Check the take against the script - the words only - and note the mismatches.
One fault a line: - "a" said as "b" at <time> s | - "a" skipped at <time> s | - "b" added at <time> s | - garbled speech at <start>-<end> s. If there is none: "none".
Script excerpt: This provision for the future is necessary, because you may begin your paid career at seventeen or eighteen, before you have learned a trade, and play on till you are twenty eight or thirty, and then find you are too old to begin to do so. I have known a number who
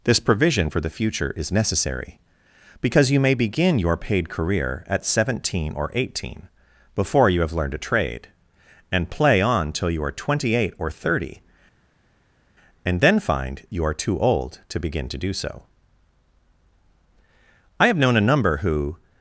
none